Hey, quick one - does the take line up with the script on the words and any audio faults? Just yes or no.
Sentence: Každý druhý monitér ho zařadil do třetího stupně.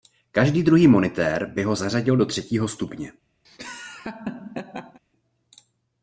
no